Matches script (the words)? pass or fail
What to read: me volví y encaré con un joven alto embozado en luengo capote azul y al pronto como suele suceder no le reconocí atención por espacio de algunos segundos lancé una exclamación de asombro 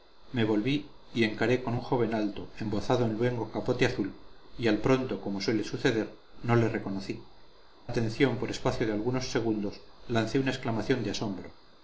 pass